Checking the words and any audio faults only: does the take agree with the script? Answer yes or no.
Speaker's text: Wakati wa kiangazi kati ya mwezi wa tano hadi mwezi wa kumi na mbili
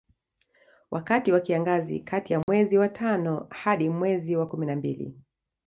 no